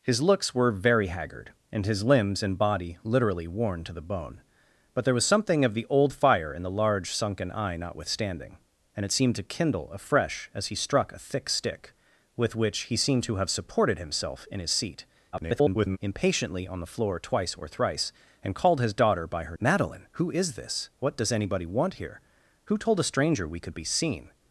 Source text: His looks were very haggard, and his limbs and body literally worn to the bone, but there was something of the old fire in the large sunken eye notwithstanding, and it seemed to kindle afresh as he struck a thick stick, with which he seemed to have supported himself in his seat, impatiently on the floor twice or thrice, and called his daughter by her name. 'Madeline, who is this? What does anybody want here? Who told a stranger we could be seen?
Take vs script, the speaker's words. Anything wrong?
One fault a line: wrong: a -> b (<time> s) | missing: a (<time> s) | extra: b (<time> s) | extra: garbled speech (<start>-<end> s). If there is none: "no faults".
extra: garbled speech (15.3-16.0 s)
missing: name (19.6 s)